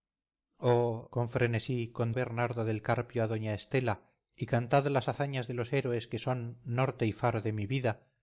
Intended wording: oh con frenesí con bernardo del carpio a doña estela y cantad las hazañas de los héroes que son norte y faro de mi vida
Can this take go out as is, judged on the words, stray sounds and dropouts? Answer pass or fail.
pass